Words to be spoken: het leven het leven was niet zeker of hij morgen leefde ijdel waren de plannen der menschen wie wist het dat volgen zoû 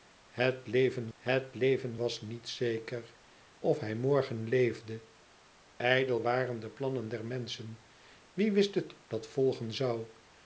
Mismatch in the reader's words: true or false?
false